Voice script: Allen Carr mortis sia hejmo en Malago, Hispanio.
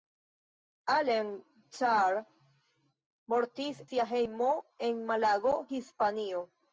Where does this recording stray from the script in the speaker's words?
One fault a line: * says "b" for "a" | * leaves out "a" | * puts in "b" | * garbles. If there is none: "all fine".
all fine